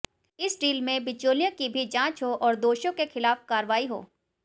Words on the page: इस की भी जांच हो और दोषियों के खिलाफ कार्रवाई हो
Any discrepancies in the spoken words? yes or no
yes